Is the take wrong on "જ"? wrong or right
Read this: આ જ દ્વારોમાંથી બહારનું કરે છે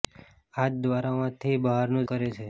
right